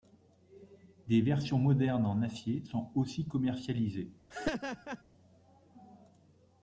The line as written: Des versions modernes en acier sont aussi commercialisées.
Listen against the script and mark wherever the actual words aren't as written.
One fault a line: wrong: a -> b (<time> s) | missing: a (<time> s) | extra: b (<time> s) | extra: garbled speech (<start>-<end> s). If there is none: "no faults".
no faults